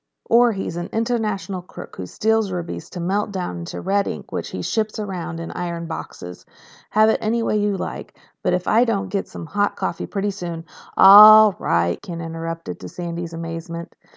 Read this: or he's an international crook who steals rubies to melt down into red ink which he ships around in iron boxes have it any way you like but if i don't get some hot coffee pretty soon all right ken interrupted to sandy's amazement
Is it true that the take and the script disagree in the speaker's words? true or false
false